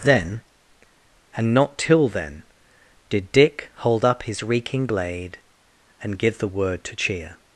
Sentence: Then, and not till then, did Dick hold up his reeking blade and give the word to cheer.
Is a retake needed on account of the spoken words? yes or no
no